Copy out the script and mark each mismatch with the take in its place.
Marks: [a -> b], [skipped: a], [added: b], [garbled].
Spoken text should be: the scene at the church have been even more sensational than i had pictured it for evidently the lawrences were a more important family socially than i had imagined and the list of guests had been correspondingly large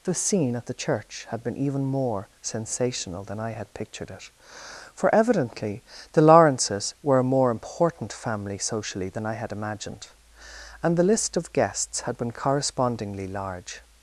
the scene at the church [have -> had] been even more sensational than i had pictured it for evidently the lawrences were a more important family socially than i had imagined and the list of guests had been correspondingly large